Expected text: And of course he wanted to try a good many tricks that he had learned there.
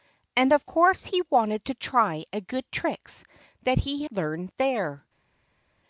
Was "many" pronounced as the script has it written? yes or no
no